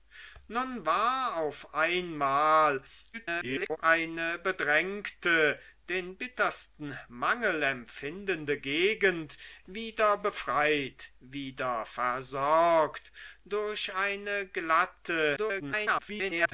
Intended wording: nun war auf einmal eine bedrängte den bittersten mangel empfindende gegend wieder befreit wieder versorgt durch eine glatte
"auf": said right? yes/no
yes